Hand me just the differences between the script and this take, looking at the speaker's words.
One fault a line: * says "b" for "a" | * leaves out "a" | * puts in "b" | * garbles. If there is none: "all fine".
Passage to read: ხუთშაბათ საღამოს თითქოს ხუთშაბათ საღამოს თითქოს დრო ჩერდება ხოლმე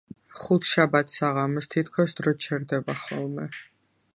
* leaves out "ხუთშაბათ საღამოს თითქოს"